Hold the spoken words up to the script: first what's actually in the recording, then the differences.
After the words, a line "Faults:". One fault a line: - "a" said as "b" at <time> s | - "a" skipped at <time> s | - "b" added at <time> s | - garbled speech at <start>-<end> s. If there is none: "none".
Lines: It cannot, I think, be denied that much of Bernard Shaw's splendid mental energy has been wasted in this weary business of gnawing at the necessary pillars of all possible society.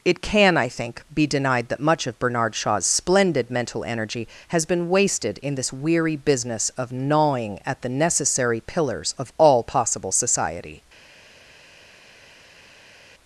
It can, I think, be denied that much of Bernard Shaw's splendid mental energy has been wasted in this weary business of gnawing at the necessary pillars of all possible society.
Faults:
- "cannot" said as "can" at 0.2 s